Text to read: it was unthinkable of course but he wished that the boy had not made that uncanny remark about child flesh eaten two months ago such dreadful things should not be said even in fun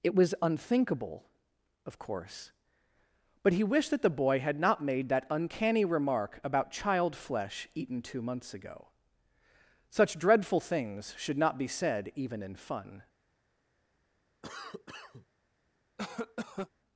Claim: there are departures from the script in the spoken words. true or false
false